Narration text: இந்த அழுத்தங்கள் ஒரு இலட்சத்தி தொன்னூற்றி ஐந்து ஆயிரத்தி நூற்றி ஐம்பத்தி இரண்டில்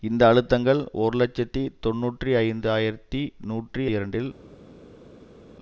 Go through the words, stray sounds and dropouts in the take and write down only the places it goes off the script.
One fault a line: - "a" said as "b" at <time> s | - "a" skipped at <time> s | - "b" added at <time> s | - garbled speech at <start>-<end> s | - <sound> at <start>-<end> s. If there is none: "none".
- "ஐம்பத்தி" skipped at 3.8 s